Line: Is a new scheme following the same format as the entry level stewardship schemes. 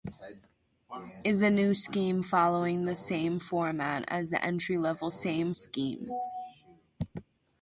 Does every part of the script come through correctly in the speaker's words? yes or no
no